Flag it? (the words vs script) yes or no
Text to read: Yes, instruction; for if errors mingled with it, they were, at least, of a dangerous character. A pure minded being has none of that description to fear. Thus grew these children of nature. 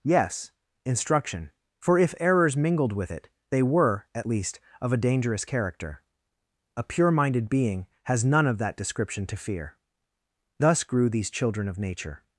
no